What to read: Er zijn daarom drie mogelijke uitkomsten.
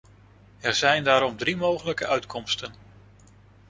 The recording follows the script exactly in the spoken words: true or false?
true